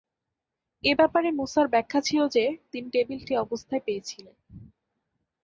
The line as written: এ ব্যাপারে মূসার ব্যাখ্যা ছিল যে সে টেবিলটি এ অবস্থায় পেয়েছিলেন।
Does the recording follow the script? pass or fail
fail